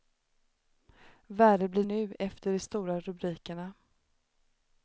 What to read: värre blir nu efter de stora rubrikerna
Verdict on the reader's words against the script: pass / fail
pass